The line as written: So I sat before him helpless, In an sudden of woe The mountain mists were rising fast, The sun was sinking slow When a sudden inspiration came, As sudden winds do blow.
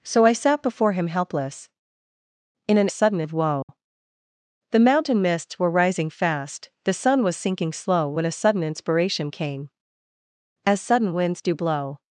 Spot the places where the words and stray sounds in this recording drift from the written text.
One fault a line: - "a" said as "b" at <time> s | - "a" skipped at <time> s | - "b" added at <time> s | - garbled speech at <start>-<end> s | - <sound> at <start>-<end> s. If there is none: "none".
- dropout at 3.6-3.7 s